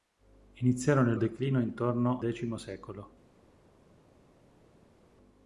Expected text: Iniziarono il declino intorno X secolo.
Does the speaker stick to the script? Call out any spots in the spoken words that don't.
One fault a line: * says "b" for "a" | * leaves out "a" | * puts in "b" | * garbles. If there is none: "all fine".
all fine